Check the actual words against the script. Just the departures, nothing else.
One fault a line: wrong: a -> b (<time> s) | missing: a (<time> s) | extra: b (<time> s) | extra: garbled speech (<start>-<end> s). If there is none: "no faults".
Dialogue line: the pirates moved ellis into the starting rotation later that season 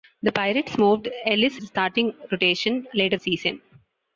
missing: into (1.6 s)
missing: that (3.2 s)